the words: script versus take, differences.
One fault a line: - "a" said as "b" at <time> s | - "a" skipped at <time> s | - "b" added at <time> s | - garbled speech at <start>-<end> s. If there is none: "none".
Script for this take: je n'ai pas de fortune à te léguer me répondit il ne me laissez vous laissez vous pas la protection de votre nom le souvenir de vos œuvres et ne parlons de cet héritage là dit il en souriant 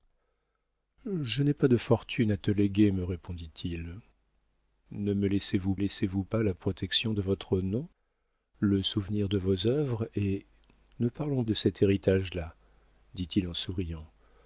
none